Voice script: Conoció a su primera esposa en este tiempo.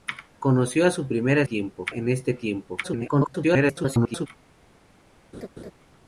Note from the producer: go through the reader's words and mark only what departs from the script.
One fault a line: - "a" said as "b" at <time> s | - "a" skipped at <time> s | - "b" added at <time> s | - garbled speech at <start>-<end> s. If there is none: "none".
- "esposa" said as "tiempo" at 1.4 s
- garbled speech at 2.8-4.3 s